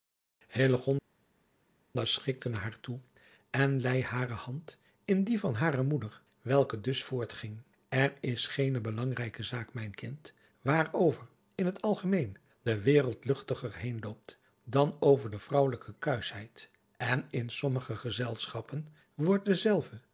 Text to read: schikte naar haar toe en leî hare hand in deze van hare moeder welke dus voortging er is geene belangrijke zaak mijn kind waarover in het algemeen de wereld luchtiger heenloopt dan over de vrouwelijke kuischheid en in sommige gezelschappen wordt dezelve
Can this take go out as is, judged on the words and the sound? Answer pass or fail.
fail